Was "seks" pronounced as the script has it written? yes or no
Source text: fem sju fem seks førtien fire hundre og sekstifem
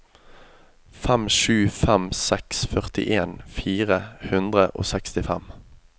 yes